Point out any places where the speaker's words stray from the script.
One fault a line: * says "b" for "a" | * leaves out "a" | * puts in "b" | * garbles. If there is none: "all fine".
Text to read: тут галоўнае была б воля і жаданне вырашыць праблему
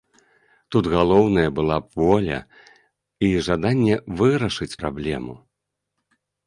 all fine